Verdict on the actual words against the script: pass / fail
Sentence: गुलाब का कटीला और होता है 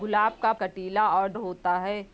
pass